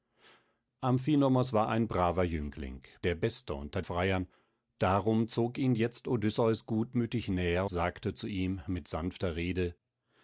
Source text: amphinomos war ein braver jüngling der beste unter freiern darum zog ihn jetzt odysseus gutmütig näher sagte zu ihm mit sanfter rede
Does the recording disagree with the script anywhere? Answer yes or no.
no